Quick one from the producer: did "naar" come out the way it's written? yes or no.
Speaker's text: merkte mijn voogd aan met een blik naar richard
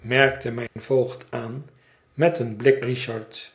no